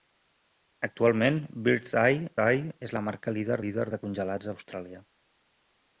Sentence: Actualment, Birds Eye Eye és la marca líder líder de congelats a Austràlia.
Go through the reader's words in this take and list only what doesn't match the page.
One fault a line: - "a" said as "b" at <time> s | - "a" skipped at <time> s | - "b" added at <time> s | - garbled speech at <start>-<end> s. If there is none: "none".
none